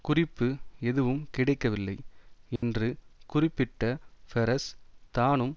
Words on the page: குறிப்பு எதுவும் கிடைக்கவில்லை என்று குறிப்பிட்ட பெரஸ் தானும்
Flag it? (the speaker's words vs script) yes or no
no